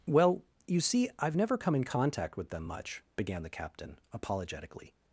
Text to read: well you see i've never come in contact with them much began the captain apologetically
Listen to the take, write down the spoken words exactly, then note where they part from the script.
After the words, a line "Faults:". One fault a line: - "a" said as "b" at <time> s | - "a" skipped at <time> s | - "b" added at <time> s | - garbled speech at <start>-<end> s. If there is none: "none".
well you see i've never come in contact with them much began the captain apologetically
Faults:
none